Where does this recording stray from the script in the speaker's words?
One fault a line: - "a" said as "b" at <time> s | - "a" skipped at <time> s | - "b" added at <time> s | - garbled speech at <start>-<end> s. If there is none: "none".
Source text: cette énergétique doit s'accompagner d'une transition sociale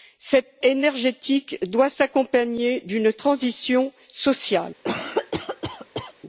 none